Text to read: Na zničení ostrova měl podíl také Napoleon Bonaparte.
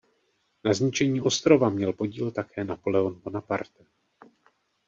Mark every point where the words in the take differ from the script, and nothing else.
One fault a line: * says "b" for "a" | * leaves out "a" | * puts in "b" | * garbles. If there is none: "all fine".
all fine